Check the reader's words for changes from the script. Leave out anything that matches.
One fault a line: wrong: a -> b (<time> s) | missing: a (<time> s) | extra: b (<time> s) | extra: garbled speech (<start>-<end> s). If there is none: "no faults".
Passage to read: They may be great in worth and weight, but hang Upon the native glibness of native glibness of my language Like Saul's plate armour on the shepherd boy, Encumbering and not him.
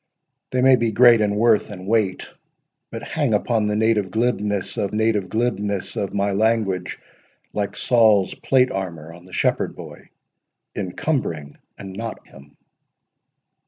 no faults